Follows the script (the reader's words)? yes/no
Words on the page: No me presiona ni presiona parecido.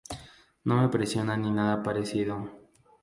no